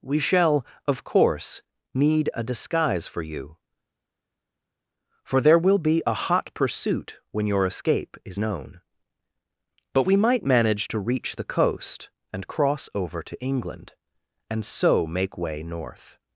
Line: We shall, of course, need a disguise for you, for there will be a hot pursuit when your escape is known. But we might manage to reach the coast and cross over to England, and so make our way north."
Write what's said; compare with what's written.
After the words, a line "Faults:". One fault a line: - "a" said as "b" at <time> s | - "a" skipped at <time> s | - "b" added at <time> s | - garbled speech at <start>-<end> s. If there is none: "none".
We shall, of course, need a disguise for you, for there will be a hot pursuit when your escape is known. But we might manage to reach the coast and cross over to England, and so make way north."
Faults:
- "our" skipped at 15.4 s